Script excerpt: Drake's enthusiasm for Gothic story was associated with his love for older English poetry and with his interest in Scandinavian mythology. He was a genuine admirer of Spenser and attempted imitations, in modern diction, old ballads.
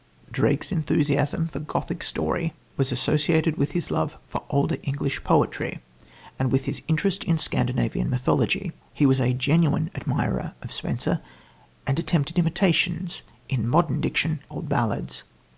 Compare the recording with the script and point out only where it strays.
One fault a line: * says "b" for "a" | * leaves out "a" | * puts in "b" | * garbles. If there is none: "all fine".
all fine